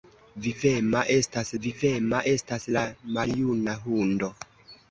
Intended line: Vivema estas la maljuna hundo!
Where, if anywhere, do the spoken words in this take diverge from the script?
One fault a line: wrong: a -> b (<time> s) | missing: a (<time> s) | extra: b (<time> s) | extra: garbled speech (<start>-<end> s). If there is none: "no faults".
extra: vivema estas (1.6 s)